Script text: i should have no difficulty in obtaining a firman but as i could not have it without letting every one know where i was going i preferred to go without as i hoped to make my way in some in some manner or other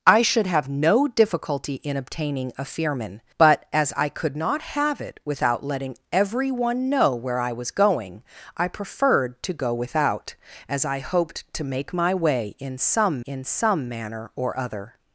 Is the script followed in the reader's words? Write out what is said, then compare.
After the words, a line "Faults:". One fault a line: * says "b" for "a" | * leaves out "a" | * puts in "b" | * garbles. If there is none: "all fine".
i should have no difficulty in obtaining a firman but as i could not have it without letting every one know where i was going i preferred to go without as i hoped to make my way in some in some manner or other
Faults:
all fine